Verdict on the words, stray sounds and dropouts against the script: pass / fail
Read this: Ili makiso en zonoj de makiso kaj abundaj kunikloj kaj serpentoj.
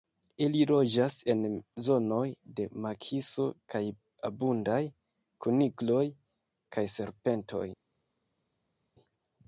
fail